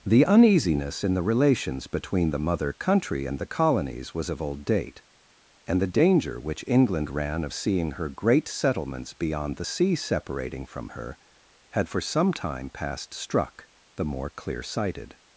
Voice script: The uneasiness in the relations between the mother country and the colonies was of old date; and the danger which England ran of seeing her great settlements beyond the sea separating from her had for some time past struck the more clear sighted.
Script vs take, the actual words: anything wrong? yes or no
no